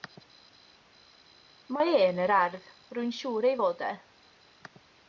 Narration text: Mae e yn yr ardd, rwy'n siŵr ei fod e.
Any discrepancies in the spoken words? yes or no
no